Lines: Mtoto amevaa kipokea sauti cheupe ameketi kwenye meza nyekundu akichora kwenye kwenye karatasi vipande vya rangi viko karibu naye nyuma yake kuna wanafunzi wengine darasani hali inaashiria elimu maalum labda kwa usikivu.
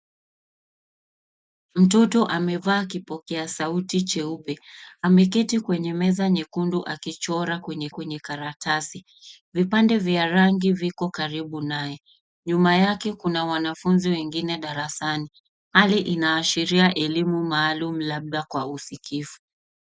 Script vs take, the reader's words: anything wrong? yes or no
no